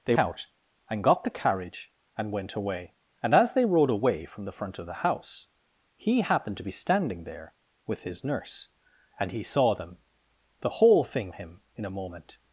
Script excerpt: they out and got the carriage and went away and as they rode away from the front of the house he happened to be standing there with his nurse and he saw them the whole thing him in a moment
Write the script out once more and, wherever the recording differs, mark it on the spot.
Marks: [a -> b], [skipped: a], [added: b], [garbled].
they out and got the carriage and went away and as they rode away from the front of the house he happened to be standing there with his nurse and he saw them the whole thing him in a moment